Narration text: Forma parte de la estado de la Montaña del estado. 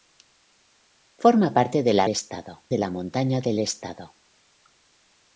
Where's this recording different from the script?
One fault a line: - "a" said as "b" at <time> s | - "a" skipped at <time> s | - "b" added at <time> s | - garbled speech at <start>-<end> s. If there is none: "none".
none